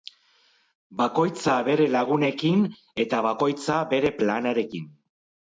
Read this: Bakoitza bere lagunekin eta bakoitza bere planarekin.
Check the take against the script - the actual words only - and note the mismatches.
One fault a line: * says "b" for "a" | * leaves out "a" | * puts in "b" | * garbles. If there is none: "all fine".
all fine